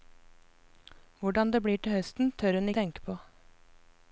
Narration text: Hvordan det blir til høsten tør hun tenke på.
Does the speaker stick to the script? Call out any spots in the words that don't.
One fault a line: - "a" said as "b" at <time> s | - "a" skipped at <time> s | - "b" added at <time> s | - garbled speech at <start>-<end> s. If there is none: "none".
none